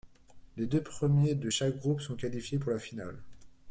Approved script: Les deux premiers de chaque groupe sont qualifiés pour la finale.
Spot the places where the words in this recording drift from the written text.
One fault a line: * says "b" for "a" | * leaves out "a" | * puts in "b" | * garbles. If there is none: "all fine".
all fine